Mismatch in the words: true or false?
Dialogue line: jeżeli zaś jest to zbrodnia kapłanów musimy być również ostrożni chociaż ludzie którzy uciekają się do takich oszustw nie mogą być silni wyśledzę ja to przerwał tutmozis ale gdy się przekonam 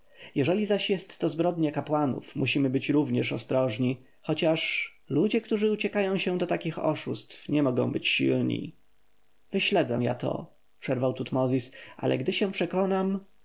false